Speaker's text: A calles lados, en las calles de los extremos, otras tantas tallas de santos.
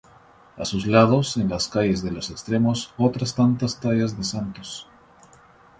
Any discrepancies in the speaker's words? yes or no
yes